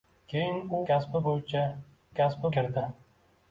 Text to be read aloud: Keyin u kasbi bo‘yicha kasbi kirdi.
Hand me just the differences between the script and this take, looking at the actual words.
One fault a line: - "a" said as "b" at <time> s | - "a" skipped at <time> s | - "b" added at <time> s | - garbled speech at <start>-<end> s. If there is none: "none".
none